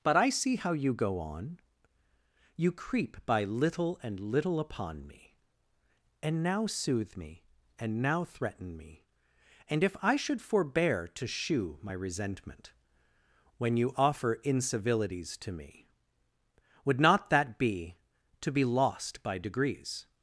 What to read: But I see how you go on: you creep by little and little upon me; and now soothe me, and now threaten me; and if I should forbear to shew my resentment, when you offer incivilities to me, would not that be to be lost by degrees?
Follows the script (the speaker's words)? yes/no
yes